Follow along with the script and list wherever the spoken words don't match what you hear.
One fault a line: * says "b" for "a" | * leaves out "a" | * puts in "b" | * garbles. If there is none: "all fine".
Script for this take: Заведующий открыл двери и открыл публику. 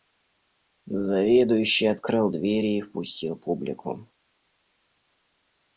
* says "впустил" for "открыл"